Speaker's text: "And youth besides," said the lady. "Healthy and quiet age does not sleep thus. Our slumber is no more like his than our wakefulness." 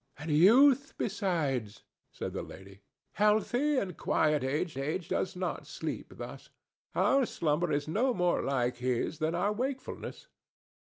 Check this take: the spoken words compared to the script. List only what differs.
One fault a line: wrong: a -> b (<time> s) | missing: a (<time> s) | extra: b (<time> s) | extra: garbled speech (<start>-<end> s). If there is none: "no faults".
extra: age (4.8 s)